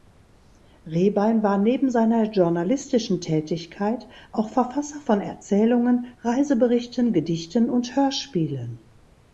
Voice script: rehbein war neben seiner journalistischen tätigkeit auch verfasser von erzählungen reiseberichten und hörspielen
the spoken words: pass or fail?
fail